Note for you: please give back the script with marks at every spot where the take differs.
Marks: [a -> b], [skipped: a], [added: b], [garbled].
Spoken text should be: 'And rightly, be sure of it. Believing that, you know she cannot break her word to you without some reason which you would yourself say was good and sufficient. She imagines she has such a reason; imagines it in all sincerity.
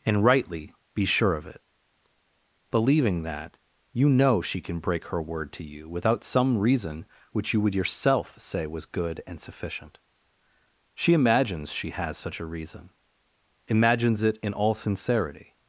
'And rightly, be sure of it. Believing that, you know she [cannot -> can] break her word to you without some reason which you would yourself say was good and sufficient. She imagines she has such a reason; imagines it in all sincerity.